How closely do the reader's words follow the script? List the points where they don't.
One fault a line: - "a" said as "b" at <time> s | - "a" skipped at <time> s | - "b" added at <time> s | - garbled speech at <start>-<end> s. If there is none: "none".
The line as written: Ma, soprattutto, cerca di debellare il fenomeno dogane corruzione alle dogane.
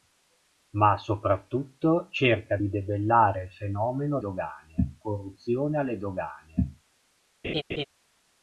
none